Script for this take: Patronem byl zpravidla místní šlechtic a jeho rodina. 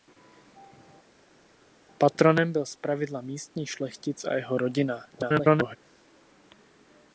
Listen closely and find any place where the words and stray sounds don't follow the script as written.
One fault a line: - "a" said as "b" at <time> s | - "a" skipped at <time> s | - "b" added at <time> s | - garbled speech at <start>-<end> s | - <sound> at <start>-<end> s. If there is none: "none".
- garbled speech at 5.1-5.8 s